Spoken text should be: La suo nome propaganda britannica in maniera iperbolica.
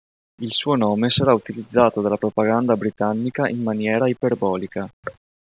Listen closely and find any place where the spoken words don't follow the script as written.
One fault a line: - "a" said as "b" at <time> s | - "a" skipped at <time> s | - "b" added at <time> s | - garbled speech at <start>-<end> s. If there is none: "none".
- "La" said as "Il" at 0.4 s
- "sarà utilizzato dalla" added at 1.1 s